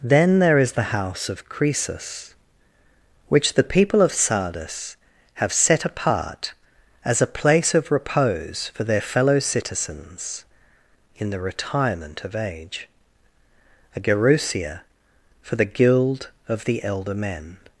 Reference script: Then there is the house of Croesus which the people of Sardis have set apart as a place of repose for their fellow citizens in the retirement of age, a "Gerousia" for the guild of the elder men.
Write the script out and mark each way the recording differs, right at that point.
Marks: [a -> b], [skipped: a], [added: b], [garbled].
Then there is the house of Croesus which the people of Sardis have set apart as a place of repose for their fellow citizens in the retirement of age, a "Gerousia" for the guild of the elder men.